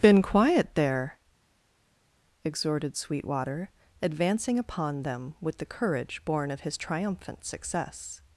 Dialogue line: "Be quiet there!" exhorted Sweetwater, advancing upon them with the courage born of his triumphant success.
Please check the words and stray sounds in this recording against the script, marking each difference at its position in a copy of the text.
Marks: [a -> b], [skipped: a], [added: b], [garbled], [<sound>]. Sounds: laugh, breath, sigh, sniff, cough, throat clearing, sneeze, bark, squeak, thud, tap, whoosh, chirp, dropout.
["Be -> Been] quiet there!" exhorted Sweetwater, advancing upon them with the courage born of his triumphant success.